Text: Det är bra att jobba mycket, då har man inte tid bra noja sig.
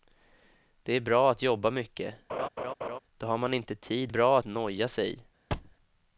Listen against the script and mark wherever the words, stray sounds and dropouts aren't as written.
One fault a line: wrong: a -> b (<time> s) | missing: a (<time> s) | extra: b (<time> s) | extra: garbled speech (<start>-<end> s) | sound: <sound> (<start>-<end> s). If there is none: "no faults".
sound: laugh (2.3-3.0 s)
sound: thud (5.5-5.8 s)